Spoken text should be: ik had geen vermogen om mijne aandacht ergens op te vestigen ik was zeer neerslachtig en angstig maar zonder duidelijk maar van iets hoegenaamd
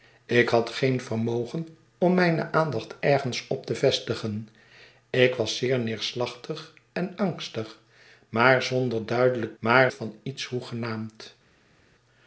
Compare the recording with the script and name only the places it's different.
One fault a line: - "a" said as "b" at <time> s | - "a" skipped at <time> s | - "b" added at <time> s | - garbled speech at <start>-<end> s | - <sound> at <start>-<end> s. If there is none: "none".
none